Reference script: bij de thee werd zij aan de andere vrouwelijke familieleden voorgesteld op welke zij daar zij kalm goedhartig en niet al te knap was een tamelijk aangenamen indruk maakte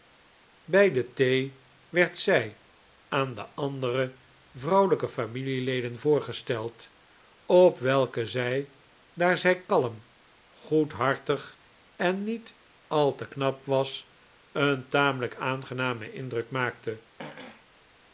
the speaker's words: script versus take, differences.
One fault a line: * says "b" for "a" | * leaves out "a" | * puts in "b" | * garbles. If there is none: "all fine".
all fine